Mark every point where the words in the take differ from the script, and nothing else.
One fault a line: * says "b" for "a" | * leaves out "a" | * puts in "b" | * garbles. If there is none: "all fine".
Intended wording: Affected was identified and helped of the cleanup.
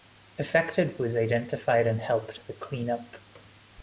all fine